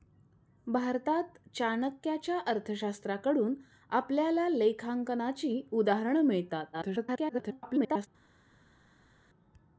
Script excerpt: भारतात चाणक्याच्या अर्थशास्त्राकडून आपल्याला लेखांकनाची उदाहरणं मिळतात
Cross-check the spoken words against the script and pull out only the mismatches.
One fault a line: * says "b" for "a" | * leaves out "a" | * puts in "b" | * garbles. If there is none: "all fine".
* garbles